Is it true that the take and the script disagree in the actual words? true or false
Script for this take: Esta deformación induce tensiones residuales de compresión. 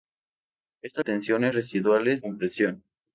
true